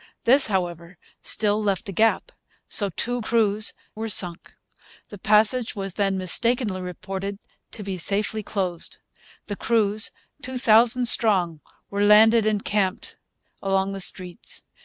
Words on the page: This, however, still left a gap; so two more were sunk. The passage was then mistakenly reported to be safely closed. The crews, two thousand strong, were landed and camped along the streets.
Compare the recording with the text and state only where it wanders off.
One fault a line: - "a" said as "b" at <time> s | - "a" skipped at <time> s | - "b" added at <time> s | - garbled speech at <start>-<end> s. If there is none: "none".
- "more" said as "crews" at 3.2 s